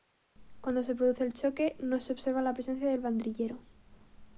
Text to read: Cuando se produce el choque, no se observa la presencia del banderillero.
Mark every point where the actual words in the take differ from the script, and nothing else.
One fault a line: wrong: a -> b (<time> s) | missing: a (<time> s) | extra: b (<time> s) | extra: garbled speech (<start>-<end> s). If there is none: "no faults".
no faults